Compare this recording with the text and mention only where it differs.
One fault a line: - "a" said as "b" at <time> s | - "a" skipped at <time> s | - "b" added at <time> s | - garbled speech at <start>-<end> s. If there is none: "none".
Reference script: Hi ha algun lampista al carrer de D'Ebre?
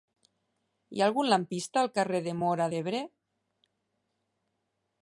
- "Móra" added at 2.4 s